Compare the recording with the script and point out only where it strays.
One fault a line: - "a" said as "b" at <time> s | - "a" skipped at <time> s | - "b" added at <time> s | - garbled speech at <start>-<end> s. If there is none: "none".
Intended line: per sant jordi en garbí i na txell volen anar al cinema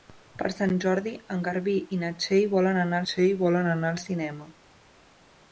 - "txell volen anar" added at 3.1 s